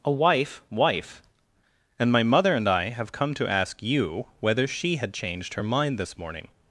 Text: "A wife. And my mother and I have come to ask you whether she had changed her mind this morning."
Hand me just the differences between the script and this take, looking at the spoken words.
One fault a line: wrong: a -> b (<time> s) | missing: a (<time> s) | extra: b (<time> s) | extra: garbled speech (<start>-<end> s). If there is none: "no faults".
extra: wife (0.7 s)